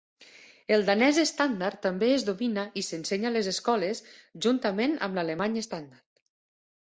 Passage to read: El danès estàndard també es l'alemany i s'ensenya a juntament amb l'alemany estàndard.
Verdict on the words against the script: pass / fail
fail